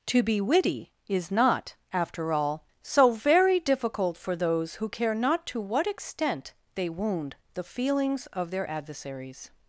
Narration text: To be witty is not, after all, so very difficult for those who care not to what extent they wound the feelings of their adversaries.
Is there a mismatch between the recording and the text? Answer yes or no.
no